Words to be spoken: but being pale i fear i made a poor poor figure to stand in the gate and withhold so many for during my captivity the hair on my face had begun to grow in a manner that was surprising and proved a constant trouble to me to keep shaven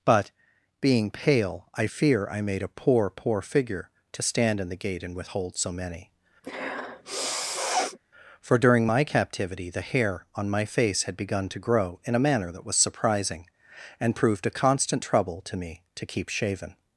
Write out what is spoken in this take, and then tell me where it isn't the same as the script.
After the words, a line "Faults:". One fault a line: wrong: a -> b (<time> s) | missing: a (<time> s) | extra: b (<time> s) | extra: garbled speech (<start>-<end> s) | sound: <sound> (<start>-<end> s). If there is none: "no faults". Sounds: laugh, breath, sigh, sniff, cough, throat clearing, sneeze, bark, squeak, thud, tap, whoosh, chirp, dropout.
but being pale i fear i made a poor poor figure to stand in the gate and withhold so many for during my captivity the hair on my face had begun to grow in a manner that was surprising and proved a constant trouble to me to keep shaven
Faults:
sound: sniff (6.4-8.0 s)